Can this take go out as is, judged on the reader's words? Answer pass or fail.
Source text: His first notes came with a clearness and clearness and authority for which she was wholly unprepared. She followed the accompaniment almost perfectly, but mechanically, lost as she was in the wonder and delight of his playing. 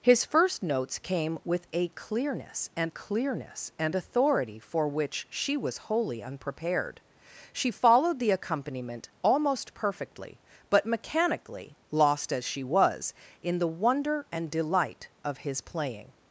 pass